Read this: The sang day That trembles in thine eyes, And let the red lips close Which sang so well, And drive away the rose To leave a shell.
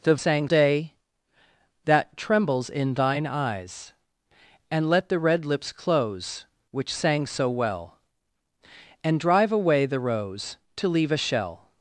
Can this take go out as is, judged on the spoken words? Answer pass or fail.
pass